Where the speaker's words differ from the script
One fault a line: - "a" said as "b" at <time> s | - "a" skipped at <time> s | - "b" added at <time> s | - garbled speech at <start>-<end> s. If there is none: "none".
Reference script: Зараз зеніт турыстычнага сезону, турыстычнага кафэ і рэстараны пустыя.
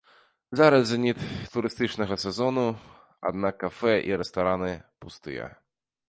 - "турыстычнага" said as "аднак" at 3.3 s